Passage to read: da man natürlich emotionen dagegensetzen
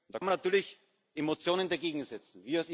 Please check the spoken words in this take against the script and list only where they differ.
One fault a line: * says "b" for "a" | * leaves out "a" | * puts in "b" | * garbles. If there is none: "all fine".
all fine